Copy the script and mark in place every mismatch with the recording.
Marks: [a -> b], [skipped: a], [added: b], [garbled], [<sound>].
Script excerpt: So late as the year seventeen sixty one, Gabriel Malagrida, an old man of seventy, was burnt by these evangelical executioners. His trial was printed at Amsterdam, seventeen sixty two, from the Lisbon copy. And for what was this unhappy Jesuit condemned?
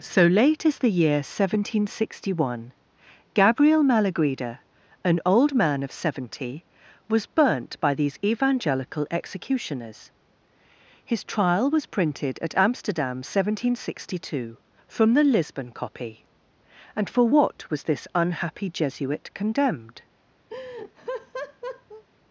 So late as the year seventeen sixty one, Gabriel Malagrida, an old man of seventy, was burnt by these evangelical executioners. His trial was printed at Amsterdam, seventeen sixty two, from the Lisbon copy. And for what was this unhappy Jesuit condemned? [laugh]